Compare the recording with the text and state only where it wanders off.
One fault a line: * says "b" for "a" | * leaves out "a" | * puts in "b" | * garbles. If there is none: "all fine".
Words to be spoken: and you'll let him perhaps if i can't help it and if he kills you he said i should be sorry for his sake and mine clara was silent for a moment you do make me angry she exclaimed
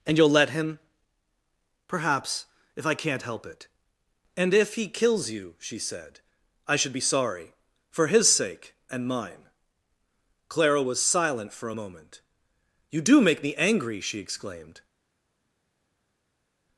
* says "she" for "he"